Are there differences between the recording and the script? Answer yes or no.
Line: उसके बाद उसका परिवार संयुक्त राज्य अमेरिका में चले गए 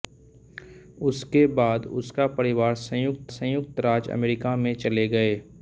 yes